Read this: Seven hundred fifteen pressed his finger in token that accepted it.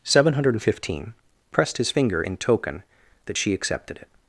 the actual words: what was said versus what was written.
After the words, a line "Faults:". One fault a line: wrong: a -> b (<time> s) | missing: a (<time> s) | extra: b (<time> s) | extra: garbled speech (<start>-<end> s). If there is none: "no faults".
Seven hundred fifteen pressed his finger in token that she accepted it.
Faults:
extra: she (3.4 s)